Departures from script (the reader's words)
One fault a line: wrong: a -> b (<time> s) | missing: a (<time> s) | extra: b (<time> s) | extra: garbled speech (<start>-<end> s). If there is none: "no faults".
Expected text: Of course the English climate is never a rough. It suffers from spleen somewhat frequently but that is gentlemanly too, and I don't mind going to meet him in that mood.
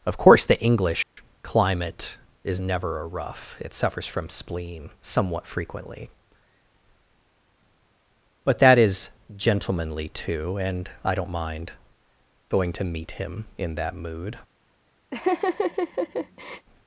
no faults